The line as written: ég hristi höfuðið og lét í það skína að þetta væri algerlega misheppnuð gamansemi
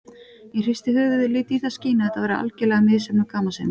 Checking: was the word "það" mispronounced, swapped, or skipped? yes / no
no